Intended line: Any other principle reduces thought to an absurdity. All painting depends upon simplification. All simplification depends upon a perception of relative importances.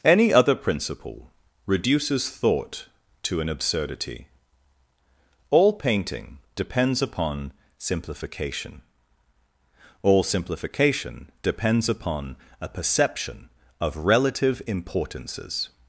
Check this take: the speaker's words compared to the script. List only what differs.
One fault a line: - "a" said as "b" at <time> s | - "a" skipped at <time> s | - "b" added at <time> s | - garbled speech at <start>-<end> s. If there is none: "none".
none